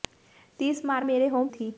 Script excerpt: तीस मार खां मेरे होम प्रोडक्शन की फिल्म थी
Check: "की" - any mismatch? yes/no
yes